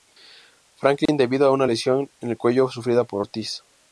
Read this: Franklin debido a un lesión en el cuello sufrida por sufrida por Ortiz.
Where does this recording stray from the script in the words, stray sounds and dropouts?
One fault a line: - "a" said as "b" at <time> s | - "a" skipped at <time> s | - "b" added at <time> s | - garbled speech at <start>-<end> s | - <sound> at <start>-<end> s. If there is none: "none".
- dropout at 1.1-1.1 s
- "un" said as "una" at 1.5 s
- "sufrida por" skipped at 3.2 s